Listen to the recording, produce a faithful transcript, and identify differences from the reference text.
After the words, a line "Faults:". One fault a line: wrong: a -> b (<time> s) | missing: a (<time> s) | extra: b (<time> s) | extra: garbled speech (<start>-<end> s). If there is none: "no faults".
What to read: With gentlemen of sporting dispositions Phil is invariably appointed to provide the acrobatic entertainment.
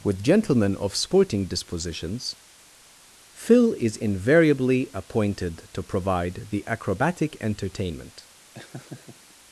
With gentlemen of sporting dispositions Phil is invariably appointed to provide the acrobatic entertainment.
Faults:
no faults